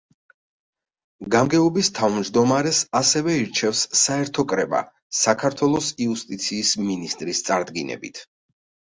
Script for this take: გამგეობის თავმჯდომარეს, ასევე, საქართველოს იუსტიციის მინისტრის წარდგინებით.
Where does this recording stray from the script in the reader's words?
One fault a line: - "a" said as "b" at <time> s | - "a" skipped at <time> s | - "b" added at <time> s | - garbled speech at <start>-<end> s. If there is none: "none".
- "ირჩევს საერთო კრება" added at 3.4 s